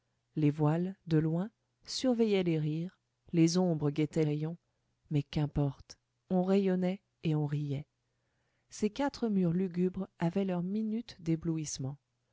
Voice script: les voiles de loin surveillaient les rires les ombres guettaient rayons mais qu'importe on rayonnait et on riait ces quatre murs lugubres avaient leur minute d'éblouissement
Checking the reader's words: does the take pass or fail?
pass